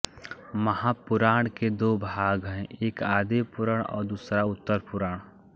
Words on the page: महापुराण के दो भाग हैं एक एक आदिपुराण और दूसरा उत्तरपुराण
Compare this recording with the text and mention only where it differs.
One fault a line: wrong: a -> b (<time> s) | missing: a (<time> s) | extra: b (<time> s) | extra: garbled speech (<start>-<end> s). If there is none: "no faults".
missing: एक (3.0 s)